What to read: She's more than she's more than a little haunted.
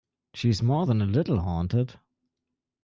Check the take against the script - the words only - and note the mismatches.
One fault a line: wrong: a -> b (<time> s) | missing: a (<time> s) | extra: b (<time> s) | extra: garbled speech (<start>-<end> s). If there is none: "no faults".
missing: she's more than (1.0 s)